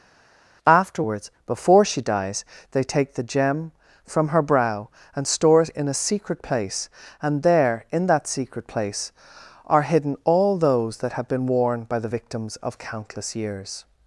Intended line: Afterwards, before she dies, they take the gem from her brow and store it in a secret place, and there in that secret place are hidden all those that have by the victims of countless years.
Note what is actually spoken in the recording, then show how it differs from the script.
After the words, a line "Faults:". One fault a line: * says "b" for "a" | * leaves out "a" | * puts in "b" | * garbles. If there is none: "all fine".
Afterwards, before she dies, they take the gem from her brow and store it in a secret place, and there in that secret place are hidden all those that have been worn by the victims of countless years.
Faults:
* puts in "been worn"